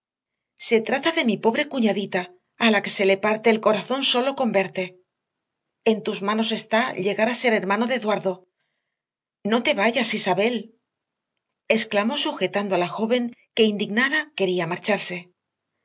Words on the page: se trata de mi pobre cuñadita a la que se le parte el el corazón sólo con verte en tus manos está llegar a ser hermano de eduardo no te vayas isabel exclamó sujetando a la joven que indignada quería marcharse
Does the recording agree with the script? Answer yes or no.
no